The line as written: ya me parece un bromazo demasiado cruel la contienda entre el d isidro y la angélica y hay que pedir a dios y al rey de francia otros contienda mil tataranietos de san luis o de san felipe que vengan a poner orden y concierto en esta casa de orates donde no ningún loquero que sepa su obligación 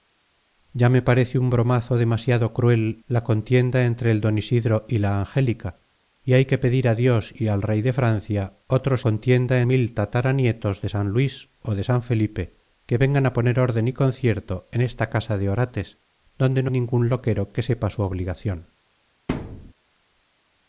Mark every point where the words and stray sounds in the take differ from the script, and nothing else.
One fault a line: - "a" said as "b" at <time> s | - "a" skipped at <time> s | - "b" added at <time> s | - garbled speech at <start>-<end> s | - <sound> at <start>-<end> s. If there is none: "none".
- thud at 19.3-19.7 s